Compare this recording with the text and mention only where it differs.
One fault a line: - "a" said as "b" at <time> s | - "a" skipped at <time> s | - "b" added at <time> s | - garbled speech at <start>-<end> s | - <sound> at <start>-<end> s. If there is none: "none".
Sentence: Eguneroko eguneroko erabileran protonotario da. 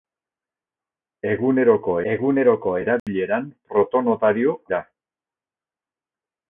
- dropout at 3.0-3.1 s